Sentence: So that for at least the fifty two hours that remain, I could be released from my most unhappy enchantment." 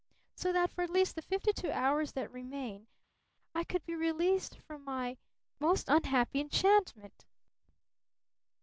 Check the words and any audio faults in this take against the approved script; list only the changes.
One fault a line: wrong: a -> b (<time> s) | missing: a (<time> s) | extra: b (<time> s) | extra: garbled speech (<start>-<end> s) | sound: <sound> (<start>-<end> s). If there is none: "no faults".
no faults